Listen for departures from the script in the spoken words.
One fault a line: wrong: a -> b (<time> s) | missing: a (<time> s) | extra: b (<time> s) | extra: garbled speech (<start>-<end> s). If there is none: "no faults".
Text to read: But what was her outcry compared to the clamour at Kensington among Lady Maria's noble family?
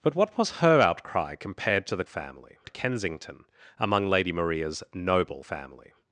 wrong: clamour -> family (2.1 s)